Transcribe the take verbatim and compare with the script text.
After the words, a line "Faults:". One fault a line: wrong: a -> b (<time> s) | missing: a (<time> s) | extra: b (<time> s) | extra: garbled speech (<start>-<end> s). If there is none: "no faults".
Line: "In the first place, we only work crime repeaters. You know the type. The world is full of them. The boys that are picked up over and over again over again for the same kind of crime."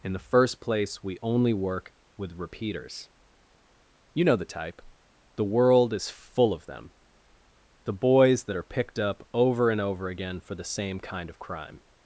"In the first place, we only work with repeaters. You know the type. The world is full of them. The boys that are picked up over and over again for the same kind of crime."
Faults:
wrong: crime -> with (2.2 s)
missing: over again (10.4 s)